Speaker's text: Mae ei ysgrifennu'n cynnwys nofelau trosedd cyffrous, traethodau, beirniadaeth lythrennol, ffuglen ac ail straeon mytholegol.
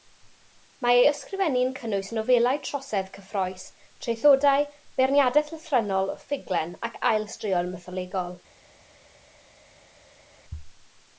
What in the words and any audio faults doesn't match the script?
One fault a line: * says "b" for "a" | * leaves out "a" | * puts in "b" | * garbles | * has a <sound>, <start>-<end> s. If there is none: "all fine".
all fine